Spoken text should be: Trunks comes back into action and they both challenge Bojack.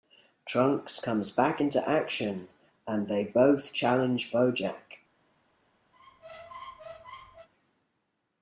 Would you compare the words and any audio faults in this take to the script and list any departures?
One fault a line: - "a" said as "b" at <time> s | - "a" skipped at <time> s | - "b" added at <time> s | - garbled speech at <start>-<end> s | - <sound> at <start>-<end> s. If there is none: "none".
- squeak at 5.9-7.5 s